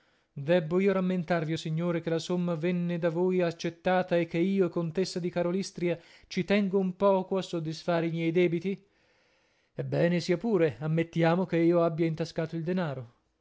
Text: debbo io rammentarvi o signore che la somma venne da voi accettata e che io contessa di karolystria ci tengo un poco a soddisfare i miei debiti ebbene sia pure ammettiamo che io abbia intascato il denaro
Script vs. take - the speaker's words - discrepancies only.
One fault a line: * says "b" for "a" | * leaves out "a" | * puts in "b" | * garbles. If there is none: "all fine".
all fine